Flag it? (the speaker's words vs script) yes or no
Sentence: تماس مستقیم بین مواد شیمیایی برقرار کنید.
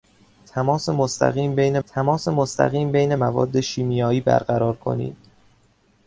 yes